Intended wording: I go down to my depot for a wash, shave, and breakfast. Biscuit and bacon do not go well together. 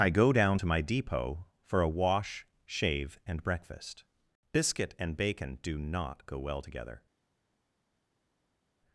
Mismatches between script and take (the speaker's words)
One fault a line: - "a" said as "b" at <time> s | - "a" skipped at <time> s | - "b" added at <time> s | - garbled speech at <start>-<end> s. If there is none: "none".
none